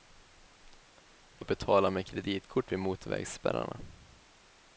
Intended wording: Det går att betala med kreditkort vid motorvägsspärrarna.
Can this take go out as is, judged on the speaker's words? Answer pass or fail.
fail